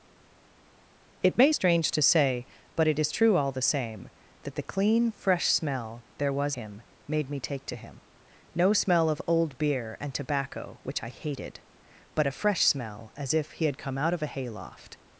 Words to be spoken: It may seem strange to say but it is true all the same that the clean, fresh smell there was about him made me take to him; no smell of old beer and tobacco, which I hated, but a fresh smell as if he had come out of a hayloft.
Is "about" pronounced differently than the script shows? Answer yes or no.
yes